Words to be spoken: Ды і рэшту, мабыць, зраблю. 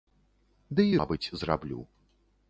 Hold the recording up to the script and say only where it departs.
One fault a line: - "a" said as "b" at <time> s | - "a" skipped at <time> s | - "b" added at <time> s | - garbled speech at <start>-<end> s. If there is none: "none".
- "рэшту" skipped at 0.9 s